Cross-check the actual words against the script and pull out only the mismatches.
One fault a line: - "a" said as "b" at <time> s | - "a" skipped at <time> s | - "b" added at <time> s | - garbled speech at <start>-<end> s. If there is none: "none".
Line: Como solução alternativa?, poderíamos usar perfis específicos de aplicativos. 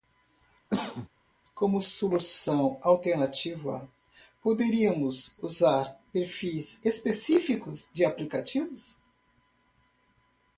none